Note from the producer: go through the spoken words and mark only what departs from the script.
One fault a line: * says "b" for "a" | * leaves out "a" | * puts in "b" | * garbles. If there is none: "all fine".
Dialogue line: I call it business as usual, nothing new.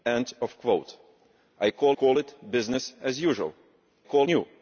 * puts in "call"
* says "call" for "nothing"